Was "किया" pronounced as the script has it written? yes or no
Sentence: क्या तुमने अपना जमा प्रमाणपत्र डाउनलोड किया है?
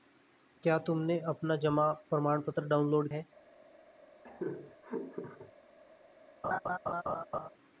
no